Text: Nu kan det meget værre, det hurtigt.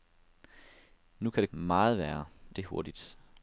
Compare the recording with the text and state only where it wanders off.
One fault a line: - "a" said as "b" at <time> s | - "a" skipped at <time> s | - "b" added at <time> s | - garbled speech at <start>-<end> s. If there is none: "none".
none